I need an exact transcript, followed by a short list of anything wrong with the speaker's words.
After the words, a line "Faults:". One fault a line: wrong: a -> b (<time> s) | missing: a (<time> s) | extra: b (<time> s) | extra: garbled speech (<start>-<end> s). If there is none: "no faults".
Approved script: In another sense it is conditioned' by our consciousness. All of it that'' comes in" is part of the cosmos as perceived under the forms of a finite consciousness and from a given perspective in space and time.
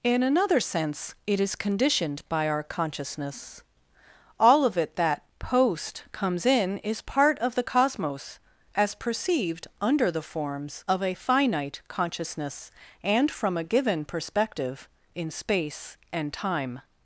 In another sense it is conditioned' by our consciousness. All of it that'' post comes in" is part of the cosmos as perceived under the forms of a finite consciousness and from a given perspective in space and time.
Faults:
extra: post (5.4 s)